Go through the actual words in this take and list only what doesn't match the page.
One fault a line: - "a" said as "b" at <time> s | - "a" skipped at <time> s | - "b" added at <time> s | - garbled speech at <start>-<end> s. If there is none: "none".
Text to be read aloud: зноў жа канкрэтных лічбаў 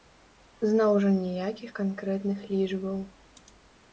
- "ніякіх" added at 1.2 s